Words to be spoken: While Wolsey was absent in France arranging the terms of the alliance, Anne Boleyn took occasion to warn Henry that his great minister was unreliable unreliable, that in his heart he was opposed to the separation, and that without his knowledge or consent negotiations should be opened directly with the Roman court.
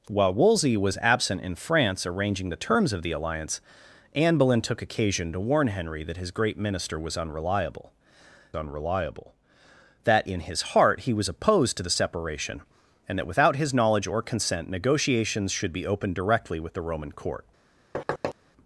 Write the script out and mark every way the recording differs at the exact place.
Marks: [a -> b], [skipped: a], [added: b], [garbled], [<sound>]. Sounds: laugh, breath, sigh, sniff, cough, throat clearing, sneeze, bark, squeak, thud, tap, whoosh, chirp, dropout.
While Wolsey was absent in France arranging the terms of the alliance, Anne Boleyn took occasion to warn Henry that his great minister was unreliable unreliable, that in his heart he was opposed to the separation, and that without his knowledge or consent negotiations should be opened directly with the Roman court. [thud]